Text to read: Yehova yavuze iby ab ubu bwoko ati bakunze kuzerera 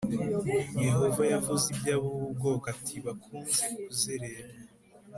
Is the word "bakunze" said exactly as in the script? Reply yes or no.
yes